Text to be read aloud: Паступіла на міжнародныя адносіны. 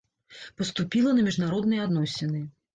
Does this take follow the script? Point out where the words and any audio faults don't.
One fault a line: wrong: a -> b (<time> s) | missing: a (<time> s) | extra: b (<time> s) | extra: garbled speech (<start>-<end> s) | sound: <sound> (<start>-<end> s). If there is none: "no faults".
no faults